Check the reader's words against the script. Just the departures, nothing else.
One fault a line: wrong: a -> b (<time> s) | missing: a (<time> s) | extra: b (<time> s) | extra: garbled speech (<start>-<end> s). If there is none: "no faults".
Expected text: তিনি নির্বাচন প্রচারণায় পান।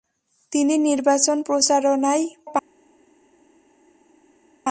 no faults